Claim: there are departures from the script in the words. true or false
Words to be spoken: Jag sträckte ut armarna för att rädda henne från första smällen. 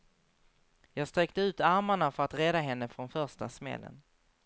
false